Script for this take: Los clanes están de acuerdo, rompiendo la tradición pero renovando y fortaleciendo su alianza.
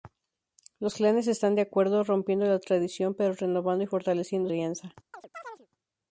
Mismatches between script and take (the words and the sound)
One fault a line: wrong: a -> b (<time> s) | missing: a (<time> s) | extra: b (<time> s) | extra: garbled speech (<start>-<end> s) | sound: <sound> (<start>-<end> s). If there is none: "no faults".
missing: su (4.5 s)
sound: chirp (5.1-5.7 s)